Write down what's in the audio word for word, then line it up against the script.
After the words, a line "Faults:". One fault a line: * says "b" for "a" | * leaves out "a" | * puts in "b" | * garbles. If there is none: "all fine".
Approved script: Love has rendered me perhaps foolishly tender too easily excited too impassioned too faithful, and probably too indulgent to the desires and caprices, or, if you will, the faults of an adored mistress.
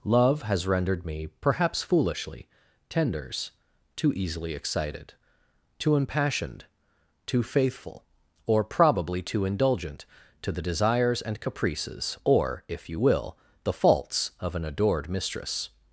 Love has rendered me perhaps foolishly tenders too easily excited too impassioned too faithful, or probably too indulgent to the desires and caprices, or, if you will, the faults of an adored mistress.
Faults:
* says "tenders" for "tender"
* says "or" for "and"